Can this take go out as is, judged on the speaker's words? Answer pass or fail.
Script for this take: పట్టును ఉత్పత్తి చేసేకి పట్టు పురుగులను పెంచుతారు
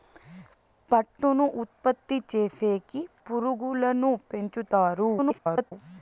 fail